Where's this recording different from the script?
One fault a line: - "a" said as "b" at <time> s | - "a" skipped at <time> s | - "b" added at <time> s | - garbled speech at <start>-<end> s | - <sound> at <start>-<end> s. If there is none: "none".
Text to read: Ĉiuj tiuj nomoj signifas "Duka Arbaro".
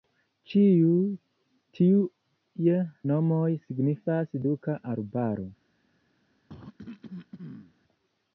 - cough at 6.5-7.7 s